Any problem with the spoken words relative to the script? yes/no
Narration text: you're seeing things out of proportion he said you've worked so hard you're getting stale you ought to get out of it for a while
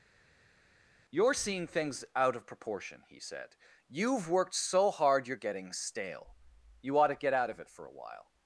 no